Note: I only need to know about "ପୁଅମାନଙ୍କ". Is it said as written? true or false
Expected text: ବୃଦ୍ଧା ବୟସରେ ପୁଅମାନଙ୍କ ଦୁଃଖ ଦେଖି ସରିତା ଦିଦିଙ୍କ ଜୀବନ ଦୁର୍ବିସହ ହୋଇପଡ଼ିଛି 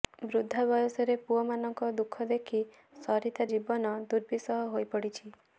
true